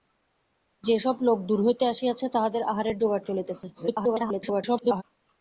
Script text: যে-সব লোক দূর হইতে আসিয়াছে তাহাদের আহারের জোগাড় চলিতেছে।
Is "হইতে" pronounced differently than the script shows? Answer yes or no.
no